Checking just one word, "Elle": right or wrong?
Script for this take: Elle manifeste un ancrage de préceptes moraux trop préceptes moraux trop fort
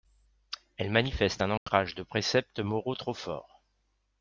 right